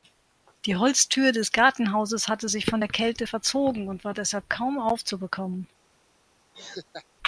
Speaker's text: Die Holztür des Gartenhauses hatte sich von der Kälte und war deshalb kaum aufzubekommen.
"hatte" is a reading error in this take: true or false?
false